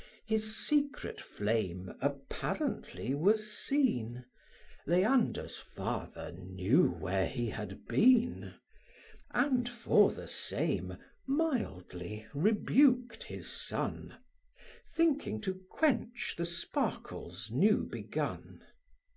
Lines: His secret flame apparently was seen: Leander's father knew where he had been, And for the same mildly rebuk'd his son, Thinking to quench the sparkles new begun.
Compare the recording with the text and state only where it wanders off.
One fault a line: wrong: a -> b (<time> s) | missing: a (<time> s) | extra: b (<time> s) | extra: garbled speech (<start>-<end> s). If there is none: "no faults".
no faults